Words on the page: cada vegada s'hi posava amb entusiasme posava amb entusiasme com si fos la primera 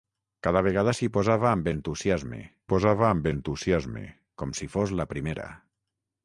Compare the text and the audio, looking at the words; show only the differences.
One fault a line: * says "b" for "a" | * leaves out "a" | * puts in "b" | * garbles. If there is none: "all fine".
all fine